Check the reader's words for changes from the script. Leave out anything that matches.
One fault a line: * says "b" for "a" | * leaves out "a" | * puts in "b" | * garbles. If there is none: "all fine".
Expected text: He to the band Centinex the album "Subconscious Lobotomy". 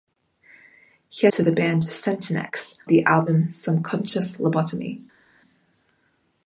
all fine